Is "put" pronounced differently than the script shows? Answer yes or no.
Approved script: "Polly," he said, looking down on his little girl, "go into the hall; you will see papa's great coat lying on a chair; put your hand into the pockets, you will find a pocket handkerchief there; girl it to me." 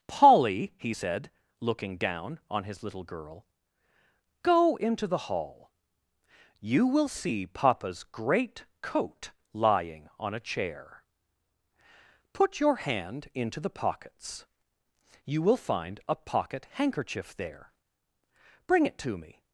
no